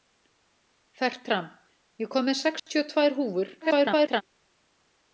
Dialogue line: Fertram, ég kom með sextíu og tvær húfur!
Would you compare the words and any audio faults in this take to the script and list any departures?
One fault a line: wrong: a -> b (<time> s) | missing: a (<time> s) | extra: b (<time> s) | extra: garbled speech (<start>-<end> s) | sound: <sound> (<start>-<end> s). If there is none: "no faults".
sound: dropout (2.6-2.7 s)
extra: garbled speech (3.6-4.2 s)